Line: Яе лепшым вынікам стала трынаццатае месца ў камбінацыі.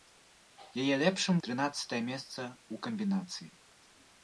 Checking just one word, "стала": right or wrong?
wrong